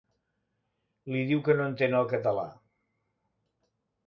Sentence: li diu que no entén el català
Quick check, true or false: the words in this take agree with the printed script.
true